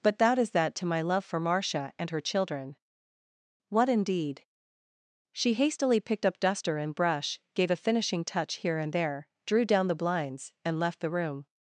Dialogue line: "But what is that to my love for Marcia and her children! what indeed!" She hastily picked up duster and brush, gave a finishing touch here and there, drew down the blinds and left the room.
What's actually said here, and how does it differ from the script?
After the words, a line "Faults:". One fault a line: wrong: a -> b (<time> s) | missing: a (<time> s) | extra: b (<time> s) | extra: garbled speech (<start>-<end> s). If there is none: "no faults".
"But that is that to my love for Marcia and her children! what indeed!" She hastily picked up duster and brush, gave a finishing touch here and there, drew down the blinds and left the room.
Faults:
wrong: what -> that (0.2 s)